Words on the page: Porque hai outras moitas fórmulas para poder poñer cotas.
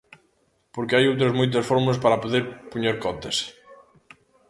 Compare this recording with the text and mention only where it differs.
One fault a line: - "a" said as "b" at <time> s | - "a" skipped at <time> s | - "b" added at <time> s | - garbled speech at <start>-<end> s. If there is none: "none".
none